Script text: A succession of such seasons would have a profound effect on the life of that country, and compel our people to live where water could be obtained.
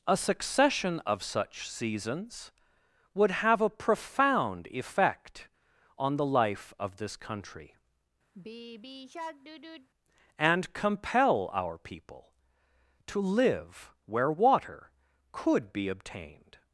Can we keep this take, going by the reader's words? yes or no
no